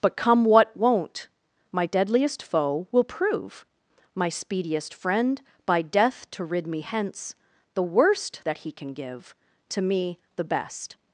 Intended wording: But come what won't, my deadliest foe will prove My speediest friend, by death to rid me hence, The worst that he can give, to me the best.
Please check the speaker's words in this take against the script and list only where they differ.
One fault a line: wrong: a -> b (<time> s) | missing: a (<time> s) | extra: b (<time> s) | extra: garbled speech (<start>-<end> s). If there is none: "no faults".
no faults